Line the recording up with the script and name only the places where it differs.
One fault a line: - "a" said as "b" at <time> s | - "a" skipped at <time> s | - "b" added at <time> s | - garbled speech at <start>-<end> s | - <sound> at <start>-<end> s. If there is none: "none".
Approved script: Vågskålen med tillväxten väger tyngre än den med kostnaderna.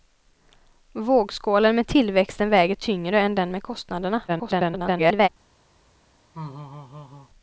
- garbled speech at 4.3-5.3 s
- laugh at 6.3-7.3 s